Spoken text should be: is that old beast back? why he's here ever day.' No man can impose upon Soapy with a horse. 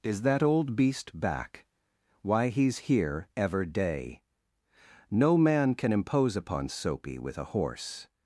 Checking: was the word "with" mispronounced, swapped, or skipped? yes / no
no